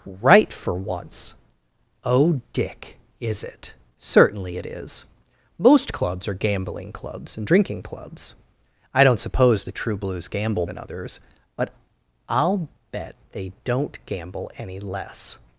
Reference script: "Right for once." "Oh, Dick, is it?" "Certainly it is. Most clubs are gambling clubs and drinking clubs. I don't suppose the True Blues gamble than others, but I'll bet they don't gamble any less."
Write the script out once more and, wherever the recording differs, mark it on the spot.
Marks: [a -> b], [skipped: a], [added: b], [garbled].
"Right for once." "Oh, Dick, is it?" "Certainly it is. Most clubs are gambling clubs and drinking clubs. I don't suppose the True Blues gamble than others, but I'll bet they don't gamble any less."